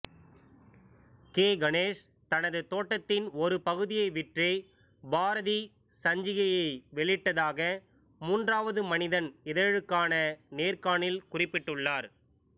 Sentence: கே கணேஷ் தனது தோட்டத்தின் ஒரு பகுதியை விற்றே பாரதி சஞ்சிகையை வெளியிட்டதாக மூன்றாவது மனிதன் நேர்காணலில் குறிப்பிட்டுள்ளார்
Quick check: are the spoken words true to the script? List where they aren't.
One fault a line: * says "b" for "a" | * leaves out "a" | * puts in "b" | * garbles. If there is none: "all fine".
* puts in "இதழுக்கான"